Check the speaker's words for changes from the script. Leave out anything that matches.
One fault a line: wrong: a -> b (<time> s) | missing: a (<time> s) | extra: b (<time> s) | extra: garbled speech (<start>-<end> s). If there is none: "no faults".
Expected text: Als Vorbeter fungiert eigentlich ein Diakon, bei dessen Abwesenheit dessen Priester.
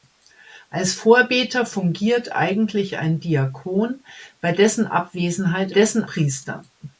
no faults